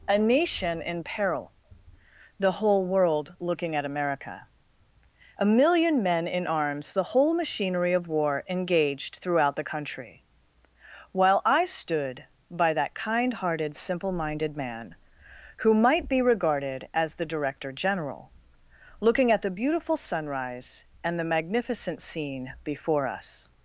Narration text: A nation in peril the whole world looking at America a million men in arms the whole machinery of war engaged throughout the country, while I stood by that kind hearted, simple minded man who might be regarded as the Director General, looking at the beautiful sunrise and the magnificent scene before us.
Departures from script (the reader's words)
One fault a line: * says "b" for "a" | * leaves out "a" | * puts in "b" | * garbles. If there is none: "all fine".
all fine